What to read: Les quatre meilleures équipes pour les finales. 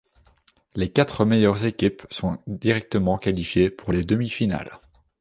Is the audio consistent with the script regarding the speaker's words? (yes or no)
no